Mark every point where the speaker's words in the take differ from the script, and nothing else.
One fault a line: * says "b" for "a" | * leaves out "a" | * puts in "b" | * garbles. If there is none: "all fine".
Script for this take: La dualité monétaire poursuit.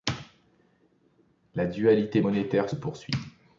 all fine